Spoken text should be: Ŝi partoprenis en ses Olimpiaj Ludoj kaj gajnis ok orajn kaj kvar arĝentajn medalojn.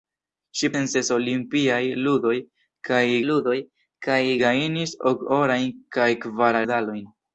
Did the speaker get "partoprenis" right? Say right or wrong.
wrong